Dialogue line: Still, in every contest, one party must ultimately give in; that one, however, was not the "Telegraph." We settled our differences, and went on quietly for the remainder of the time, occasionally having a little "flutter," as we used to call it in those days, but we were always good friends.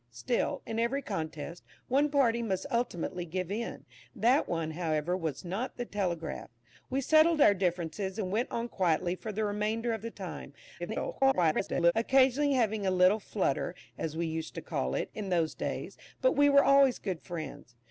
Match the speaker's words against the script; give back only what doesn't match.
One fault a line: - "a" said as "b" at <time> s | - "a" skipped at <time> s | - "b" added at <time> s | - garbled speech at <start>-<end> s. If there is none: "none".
- garbled speech at 10.8-11.9 s